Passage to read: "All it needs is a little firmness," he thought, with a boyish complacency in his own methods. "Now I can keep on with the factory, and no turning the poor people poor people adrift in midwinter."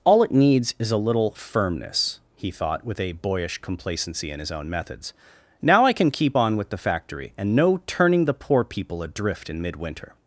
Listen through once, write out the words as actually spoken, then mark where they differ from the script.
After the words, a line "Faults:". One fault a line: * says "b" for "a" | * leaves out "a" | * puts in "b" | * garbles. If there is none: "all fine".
"All it needs is a little firmness," he thought, with a boyish complacency in his own methods. "Now I can keep on with the factory, and no turning the poor people adrift in midwinter."
Faults:
* leaves out "poor people"